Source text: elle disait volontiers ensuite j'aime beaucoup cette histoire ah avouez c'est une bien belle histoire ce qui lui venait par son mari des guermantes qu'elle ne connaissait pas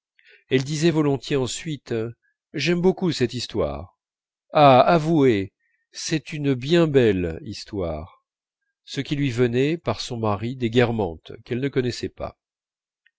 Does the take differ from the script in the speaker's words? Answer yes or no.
no